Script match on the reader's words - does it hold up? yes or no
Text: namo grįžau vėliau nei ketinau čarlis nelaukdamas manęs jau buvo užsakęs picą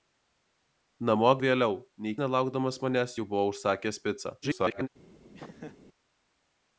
no